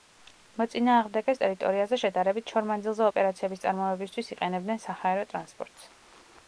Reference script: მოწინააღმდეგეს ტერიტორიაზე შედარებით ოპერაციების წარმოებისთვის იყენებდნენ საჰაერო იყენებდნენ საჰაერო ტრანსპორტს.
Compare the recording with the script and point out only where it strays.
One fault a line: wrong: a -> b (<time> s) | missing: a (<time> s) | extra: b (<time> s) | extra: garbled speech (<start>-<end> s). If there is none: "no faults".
extra: შორ მანძილზე (2.5 s)
missing: იყენებდნენ საჰაერო (5.3 s)